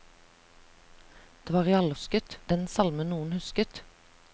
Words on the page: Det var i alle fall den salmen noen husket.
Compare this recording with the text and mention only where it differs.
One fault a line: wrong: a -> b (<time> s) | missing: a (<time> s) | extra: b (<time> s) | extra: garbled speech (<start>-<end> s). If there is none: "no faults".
wrong: fall -> husket (1.9 s)